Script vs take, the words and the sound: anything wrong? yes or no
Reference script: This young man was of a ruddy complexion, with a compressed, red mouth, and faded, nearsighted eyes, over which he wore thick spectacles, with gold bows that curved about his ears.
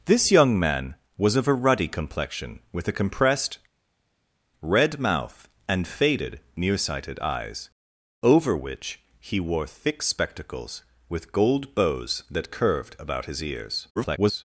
yes